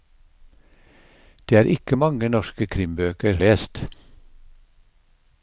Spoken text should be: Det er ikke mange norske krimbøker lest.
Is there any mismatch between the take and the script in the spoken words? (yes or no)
no